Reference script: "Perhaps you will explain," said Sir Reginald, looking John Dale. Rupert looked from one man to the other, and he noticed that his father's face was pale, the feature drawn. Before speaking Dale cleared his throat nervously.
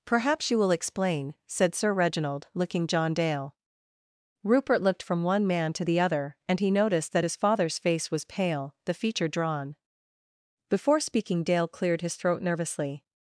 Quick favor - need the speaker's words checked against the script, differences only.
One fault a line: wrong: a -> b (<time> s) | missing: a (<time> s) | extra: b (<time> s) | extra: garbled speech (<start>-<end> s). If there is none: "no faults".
no faults